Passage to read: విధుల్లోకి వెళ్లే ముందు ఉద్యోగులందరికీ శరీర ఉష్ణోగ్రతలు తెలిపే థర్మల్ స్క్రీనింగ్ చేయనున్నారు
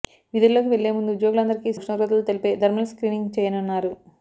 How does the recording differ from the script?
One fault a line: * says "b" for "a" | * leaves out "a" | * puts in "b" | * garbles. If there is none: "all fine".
* leaves out "శరీర"